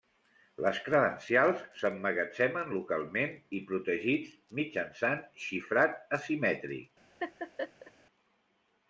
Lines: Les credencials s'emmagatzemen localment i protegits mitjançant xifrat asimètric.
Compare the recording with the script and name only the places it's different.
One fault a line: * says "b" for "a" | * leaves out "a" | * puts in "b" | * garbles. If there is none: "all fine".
all fine